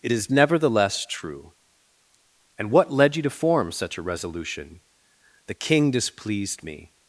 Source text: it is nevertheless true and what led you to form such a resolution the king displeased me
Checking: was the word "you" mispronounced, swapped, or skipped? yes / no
no